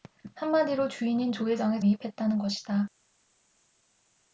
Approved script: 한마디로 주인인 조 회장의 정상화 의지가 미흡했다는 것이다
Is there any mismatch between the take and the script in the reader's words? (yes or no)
yes